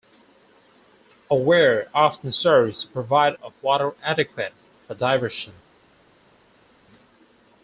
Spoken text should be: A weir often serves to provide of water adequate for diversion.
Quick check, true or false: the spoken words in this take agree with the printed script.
true